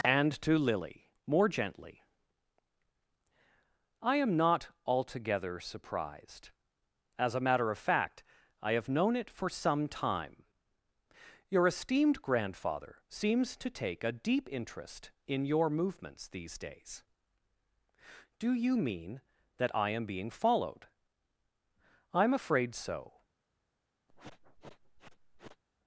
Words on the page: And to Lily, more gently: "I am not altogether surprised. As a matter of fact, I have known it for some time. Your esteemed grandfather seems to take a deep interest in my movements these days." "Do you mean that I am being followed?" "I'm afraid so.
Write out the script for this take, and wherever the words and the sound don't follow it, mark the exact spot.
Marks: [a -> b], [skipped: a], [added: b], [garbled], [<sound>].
And to Lily, more gently: "I am not altogether surprised. As a matter of fact, I have known it for some time. Your esteemed grandfather seems to take a deep interest in [my -> your] movements these days." "Do you mean that I am being followed?" "I'm afraid so. [sniff]